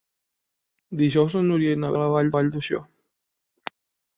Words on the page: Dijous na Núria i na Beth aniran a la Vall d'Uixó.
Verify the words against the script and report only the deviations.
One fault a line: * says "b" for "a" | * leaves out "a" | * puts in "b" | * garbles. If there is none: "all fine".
* leaves out "Beth aniran"
* puts in "Vall"